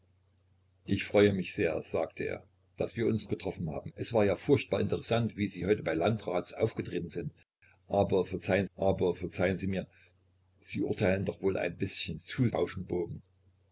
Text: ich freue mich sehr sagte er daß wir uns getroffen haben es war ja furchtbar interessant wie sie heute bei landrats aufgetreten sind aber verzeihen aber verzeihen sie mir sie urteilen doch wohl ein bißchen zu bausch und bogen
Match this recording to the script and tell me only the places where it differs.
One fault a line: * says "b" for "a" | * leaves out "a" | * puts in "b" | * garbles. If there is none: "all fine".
all fine